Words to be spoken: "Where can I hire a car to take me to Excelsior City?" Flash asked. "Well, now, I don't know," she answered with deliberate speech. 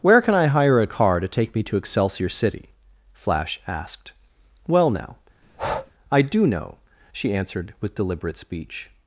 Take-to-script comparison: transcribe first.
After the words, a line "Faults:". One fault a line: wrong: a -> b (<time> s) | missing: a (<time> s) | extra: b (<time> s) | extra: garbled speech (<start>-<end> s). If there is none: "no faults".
"Where can I hire a car to take me to Excelsior City?" Flash asked. "Well, now, I do know," she answered with deliberate speech.
Faults:
wrong: don't -> do (6.2 s)